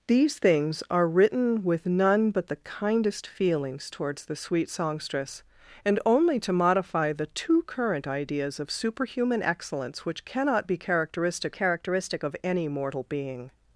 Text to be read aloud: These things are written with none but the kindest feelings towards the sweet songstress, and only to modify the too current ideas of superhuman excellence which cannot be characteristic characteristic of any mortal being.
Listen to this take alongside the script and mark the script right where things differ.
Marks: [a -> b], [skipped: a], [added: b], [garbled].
These things are written with none but the kindest feelings towards the sweet songstress, and only to modify the too current ideas of superhuman excellence which cannot be characteristic characteristic of any mortal being.